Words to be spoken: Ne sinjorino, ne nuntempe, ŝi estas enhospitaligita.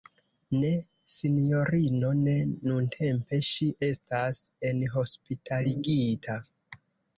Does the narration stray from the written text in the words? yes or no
no